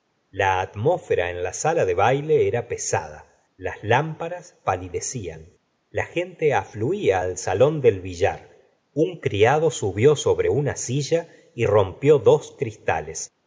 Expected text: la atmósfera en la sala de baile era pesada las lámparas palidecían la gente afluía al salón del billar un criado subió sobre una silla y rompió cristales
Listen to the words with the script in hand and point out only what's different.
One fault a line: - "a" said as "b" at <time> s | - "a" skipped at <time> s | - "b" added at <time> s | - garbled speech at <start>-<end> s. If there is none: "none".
- "dos" added at 12.2 s